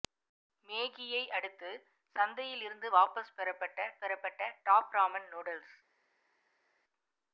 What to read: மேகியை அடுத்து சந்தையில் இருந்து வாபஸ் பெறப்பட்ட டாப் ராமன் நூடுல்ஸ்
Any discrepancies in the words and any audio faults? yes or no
yes